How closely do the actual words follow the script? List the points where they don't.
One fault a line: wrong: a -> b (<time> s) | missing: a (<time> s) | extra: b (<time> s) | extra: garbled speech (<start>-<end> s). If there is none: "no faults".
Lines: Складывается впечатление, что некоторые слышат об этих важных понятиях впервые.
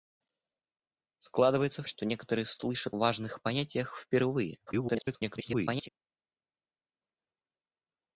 missing: впечатление (1.8 s)
missing: об этих (3.0 s)
extra: garbled speech (4.7-5.9 s)